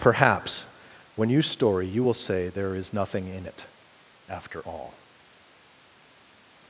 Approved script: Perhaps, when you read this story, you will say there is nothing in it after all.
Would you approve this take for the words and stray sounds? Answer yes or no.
no